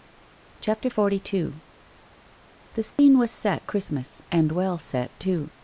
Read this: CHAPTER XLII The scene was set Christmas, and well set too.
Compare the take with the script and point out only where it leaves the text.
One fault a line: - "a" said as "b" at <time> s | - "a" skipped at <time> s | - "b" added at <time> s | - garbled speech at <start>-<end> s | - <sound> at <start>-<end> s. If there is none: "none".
- dropout at 2.9-3.0 s